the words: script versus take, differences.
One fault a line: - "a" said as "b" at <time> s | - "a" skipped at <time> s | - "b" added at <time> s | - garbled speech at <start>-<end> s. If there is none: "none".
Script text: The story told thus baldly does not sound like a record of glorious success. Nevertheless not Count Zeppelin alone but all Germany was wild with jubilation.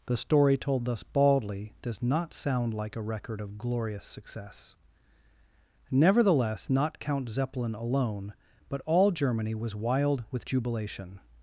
none